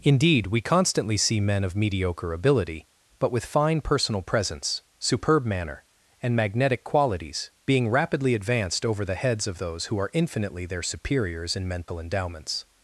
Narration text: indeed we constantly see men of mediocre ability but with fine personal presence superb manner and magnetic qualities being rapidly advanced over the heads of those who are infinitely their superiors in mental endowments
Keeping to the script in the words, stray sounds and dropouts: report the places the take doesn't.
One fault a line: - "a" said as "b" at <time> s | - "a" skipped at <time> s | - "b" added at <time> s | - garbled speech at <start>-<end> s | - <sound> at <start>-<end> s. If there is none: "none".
- dropout at 11.8-11.9 s